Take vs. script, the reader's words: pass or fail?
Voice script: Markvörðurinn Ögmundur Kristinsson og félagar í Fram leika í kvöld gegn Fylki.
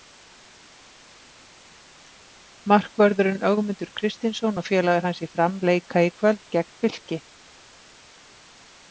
fail